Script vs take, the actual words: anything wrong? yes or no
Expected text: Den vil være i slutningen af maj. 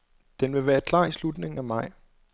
yes